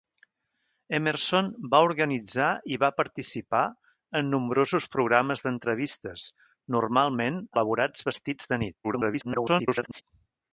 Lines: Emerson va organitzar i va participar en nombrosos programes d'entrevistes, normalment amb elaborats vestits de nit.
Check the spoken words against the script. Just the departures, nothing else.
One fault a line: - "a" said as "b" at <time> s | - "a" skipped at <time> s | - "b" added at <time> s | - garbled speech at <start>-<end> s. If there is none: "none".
- "amb" skipped at 7.4 s
- garbled speech at 8.8-10.0 s